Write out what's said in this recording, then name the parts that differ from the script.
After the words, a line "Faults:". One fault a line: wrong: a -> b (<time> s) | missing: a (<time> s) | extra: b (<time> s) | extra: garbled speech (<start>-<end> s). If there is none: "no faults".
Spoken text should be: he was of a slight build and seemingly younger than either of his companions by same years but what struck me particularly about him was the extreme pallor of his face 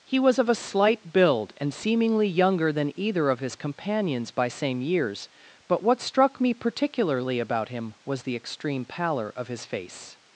he was of a slight build and seemingly younger than either of his companions by same years but what struck me particularly about him was the extreme pallor of his face
Faults:
no faults